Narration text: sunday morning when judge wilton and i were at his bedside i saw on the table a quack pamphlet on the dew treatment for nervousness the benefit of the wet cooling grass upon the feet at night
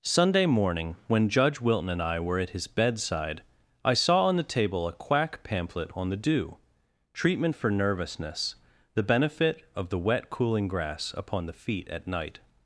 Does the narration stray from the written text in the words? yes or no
no